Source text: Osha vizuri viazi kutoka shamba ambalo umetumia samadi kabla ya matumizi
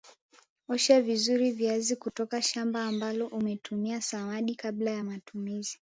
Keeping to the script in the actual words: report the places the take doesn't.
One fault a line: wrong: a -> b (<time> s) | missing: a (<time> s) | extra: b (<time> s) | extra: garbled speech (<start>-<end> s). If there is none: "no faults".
no faults